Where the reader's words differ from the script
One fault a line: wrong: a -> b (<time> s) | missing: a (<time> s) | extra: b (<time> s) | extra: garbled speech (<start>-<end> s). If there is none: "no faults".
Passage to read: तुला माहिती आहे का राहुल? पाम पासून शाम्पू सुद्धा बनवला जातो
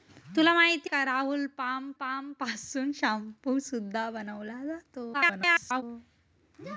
missing: आहे (0.9 s)
extra: पाम (2.0 s)
extra: garbled speech (5.1-5.8 s)